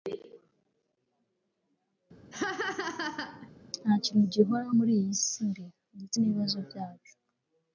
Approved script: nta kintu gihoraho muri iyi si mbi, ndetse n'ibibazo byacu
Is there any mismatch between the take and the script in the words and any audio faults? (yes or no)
yes